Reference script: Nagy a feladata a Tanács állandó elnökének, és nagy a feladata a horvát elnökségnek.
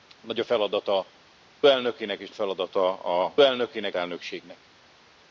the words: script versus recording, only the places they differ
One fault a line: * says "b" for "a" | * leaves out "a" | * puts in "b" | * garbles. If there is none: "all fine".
* leaves out "a Tanács állandó"
* leaves out "nagy"
* says "elnökének" for "horvát"